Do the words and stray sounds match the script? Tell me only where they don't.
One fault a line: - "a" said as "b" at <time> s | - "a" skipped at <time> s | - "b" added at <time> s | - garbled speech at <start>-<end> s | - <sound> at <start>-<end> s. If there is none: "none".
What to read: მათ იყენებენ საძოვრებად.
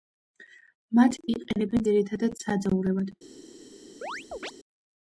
- "ძირითადად" added at 1.8 s
- chirp at 4.0-4.5 s